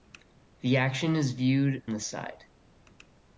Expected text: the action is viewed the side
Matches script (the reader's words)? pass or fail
pass